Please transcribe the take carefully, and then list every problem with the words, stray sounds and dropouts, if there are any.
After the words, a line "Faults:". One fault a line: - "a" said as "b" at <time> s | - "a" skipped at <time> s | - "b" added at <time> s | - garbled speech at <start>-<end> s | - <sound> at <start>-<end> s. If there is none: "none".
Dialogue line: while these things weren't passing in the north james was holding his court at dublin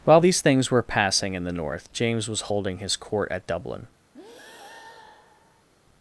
while these things were passing in the north james was holding his court at dublin
Faults:
- "weren't" said as "were" at 0.7 s
- breath at 4.1-5.7 s